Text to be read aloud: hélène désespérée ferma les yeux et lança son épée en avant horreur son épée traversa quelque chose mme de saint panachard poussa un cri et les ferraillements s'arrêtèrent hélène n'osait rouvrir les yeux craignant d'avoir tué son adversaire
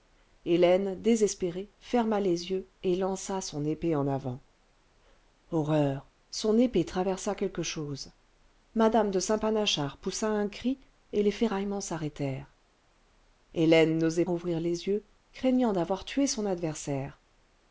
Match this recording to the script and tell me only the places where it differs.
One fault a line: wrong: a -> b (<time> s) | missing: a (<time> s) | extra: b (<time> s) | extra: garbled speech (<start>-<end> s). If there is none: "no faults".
no faults